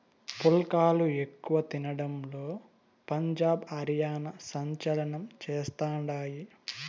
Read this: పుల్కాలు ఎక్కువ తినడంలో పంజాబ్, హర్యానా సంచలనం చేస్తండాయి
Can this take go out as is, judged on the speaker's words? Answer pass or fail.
pass